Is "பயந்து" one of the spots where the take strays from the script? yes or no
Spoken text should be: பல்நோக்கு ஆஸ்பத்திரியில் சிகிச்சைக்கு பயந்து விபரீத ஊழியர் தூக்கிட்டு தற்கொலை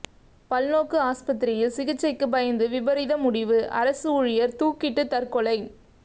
no